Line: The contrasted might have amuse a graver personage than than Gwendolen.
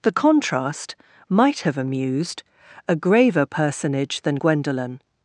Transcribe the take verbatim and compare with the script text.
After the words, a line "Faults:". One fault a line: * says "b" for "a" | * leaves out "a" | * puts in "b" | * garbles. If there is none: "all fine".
The contrast might have amused a graver personage than Gwendolen.
Faults:
* says "contrast" for "contrasted"
* says "amused" for "amuse"
* leaves out "than"